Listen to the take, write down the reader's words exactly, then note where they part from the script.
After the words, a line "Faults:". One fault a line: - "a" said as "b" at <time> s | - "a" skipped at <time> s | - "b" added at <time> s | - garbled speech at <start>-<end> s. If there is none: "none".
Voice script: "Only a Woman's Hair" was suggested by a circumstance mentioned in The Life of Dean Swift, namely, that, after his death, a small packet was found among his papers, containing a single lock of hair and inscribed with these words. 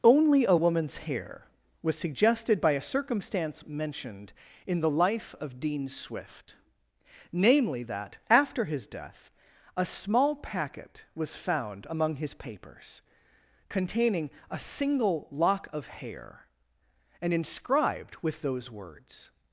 "Only a Woman's Hair" was suggested by a circumstance mentioned in The Life of Dean Swift, namely, that, after his death, a small packet was found among his papers, containing a single lock of hair and inscribed with those words.
Faults:
- "these" said as "those" at 18.4 s